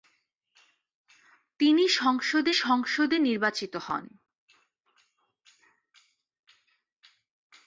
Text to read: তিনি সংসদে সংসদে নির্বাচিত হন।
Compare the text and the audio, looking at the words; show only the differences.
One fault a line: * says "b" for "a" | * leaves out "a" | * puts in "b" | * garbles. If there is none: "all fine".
all fine